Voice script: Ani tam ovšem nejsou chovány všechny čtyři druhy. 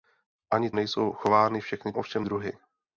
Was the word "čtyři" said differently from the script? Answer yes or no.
yes